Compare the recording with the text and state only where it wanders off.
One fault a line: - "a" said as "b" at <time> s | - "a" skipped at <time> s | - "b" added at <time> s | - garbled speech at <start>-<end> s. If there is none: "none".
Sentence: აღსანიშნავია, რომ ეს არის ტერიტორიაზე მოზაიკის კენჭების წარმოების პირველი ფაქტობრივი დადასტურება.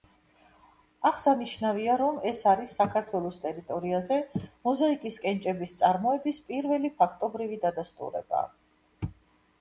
- "საქართველოს" added at 2.8 s